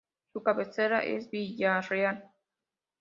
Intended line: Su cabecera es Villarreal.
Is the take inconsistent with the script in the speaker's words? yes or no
no